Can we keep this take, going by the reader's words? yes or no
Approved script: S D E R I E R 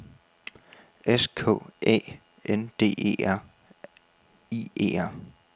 no